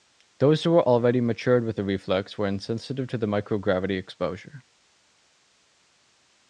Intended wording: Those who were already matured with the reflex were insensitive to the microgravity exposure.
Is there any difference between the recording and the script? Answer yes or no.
no